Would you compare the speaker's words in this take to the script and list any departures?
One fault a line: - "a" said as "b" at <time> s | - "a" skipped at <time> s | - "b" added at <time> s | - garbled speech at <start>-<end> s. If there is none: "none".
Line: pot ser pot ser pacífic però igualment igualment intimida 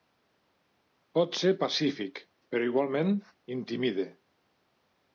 - "pot ser" skipped at 1.5 s
- "igualment" skipped at 3.1 s